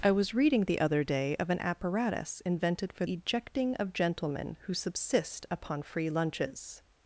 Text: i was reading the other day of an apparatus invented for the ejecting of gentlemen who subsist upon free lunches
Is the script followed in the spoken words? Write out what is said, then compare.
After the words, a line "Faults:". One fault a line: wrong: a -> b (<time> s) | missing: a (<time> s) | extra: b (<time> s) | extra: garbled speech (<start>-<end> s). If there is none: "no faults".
i was reading the other day of an apparatus invented for ejecting of gentlemen who subsist upon free lunches
Faults:
missing: the (3.0 s)